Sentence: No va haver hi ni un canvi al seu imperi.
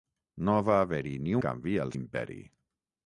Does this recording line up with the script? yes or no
no